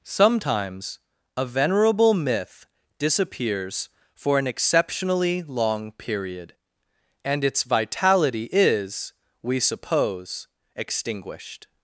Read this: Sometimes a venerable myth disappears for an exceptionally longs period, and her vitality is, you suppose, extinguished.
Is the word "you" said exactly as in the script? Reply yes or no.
no